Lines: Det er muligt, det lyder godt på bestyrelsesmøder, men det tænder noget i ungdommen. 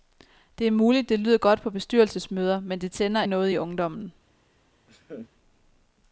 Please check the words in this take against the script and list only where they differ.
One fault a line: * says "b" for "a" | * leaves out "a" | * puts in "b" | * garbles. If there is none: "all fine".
all fine